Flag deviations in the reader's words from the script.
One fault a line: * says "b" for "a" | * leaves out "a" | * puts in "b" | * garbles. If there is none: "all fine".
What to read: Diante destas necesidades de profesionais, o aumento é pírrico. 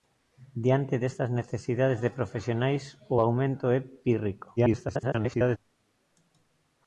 * garbles